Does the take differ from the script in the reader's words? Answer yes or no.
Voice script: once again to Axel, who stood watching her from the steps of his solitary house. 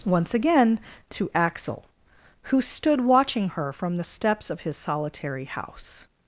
no